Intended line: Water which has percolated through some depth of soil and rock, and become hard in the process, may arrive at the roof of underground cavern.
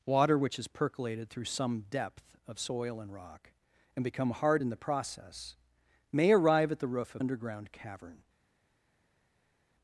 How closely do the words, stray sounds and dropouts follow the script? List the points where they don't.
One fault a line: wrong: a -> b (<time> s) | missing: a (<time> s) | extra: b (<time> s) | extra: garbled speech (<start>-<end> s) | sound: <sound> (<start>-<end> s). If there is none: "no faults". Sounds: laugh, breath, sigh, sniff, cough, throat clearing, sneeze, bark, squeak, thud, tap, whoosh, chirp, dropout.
no faults